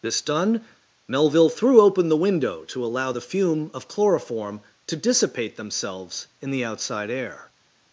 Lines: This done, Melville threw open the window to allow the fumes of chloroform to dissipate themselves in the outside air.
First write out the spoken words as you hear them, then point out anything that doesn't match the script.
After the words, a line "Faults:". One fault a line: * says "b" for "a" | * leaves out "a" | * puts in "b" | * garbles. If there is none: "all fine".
This done, Melville threw open the window to allow the fume of chloroform to dissipate themselves in the outside air.
Faults:
* says "fume" for "fumes"